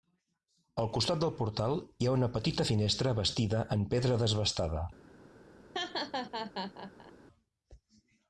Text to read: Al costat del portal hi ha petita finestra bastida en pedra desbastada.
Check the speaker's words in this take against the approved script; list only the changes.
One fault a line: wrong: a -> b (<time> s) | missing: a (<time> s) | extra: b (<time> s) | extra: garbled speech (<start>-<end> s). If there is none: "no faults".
extra: una (2.1 s)